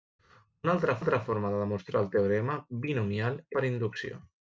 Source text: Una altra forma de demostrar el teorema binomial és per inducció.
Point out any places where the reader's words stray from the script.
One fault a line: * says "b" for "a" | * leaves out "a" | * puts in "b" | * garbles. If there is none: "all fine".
* puts in "altra"
* leaves out "és"